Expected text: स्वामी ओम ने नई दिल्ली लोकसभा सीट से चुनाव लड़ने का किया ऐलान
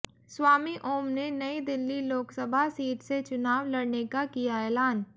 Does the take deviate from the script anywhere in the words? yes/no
no